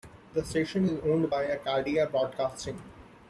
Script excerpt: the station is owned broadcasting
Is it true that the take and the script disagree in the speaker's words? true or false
true